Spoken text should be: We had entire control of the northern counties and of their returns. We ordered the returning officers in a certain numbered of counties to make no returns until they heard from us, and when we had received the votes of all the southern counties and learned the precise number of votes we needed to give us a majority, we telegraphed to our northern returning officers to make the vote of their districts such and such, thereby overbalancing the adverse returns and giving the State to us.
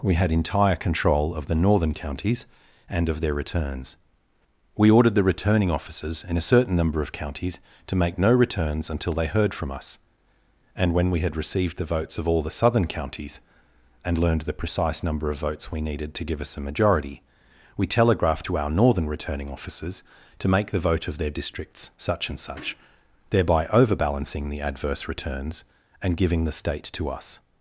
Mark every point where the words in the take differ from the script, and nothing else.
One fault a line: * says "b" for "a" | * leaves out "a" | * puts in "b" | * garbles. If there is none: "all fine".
* says "number" for "numbered"